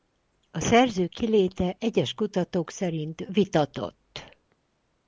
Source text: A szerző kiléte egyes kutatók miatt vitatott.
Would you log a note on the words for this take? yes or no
yes